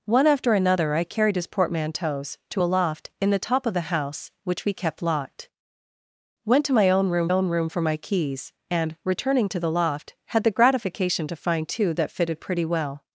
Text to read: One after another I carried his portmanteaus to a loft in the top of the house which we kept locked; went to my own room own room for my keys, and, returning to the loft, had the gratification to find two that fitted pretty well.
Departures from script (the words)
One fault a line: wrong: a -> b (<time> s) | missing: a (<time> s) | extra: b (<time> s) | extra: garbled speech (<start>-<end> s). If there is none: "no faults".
no faults